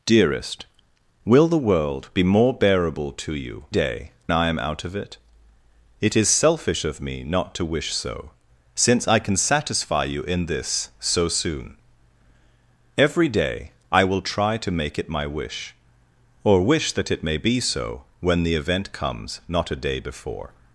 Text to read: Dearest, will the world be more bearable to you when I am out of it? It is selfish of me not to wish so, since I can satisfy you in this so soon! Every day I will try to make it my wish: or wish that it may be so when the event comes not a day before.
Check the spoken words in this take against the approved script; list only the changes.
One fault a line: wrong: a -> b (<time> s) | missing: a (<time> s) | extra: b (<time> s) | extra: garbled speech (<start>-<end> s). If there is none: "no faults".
wrong: when -> day (3.7 s)